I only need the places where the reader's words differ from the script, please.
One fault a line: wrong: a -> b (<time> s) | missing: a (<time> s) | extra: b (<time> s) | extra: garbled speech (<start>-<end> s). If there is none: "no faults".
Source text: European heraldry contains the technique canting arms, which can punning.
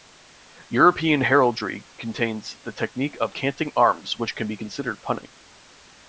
extra: of (3.2 s)
extra: be considered (4.5 s)